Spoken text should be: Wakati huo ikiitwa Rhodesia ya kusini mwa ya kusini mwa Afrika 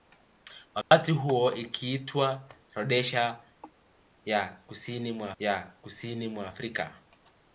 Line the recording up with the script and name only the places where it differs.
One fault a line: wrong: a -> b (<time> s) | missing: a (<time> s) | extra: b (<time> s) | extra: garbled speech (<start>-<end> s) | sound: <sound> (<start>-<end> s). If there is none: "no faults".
sound: dropout (0.8-0.9 s)